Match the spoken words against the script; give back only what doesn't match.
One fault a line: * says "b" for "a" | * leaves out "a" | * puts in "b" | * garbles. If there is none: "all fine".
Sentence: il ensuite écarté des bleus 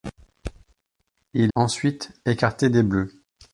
all fine